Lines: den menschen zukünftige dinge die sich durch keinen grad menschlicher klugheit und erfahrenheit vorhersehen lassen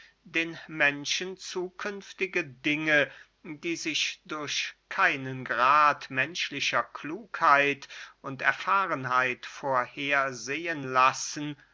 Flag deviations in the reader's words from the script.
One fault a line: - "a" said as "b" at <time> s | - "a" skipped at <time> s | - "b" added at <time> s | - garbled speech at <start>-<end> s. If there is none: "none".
none